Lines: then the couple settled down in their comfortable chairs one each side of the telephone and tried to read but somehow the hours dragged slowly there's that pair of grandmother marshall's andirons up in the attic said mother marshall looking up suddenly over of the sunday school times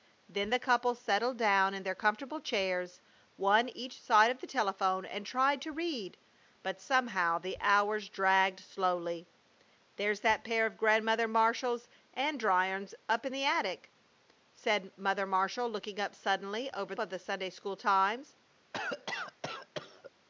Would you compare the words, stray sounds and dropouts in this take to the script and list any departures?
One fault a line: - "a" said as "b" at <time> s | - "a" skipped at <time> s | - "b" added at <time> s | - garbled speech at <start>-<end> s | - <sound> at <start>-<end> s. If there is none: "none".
- cough at 18.7-20.1 s